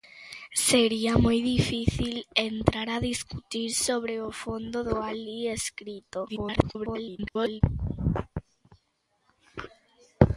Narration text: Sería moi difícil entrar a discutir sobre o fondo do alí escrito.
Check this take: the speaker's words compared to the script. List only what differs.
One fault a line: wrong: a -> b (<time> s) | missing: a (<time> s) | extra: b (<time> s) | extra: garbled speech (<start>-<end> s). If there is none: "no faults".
extra: garbled speech (6.3-7.6 s)